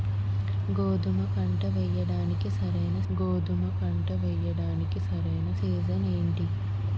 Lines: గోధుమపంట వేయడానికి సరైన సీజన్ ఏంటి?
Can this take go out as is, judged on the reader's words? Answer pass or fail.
fail